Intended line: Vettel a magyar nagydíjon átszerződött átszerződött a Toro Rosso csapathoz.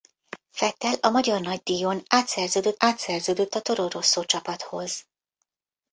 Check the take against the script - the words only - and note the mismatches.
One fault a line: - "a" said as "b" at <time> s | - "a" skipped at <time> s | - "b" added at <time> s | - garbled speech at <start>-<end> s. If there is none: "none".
none